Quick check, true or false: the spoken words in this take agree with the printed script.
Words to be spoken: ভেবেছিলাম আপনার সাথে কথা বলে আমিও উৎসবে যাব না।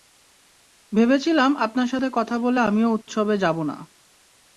true